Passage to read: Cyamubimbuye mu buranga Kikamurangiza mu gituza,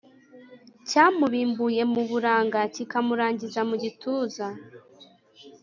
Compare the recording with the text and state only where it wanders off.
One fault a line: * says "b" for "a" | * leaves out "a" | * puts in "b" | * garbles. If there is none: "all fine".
all fine